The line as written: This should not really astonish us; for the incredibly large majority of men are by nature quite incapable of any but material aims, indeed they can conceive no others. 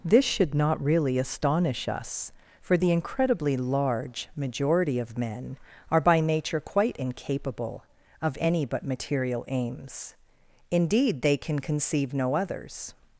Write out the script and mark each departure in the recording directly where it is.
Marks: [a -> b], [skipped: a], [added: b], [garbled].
This should not really astonish us; for the incredibly large majority of men are by nature quite incapable of any but material aims, indeed they can conceive no others.